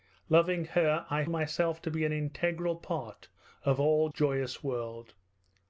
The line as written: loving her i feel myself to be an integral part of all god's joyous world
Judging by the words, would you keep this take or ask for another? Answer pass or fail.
fail